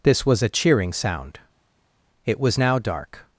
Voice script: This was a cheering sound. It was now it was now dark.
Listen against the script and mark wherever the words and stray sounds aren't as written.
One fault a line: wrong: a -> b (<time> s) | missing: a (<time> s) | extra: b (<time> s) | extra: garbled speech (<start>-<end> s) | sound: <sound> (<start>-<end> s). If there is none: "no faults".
missing: it was now (2.8 s)